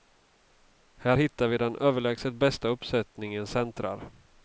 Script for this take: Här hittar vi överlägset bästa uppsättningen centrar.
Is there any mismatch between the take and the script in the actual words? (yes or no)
yes